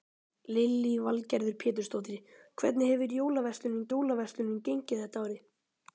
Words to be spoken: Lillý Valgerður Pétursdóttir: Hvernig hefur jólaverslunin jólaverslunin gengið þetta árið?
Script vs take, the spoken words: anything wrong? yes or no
no